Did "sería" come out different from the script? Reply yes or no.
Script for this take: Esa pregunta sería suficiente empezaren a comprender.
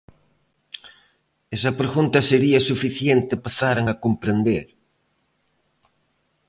no